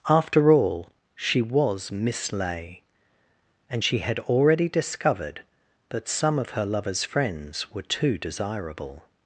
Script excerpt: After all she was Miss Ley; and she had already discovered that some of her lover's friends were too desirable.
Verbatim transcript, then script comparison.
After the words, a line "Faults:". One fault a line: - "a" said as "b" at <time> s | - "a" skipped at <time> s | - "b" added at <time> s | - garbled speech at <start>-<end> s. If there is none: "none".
After all she was Miss Ley; and she had already discovered that some of her lover's friends were too desirable.
Faults:
none